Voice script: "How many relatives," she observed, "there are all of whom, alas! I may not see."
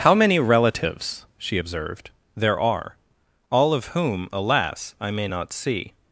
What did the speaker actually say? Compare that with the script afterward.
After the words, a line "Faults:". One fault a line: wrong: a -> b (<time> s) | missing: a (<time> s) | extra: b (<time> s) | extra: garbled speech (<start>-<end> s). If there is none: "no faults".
"How many relatives," she observed, "there are all of whom, alas! I may not see."
Faults:
no faults